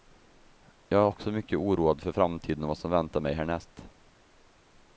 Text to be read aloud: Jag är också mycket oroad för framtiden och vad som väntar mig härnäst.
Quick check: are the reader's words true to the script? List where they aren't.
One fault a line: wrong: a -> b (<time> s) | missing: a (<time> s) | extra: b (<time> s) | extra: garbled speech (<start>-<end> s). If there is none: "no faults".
no faults